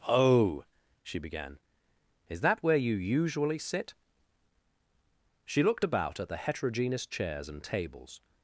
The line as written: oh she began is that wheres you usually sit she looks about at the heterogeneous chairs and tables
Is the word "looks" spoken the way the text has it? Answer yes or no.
no